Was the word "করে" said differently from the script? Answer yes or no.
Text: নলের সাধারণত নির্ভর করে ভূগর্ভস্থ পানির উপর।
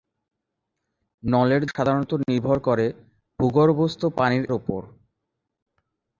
no